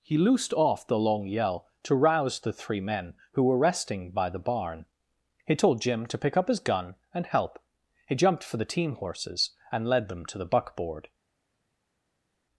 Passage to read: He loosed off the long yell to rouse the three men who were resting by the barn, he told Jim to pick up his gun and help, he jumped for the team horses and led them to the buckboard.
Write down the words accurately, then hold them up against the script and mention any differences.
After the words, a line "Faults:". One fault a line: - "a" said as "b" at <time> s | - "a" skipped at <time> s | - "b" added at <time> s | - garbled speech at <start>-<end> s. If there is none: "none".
He loosed off the long yell to rouse the three men who were resting by the barn, he told Jim to pick up his gun and help, he jumped for the team horses and led them to the buckboard.
Faults:
none